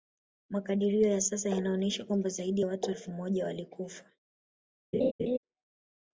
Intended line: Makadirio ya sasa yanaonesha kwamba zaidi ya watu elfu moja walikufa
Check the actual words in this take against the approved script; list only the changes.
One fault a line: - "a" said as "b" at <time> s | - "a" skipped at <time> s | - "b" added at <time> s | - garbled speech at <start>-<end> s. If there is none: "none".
none